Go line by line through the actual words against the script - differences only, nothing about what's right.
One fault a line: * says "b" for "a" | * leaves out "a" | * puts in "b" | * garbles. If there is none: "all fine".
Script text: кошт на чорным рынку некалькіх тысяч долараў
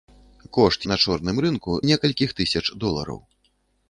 all fine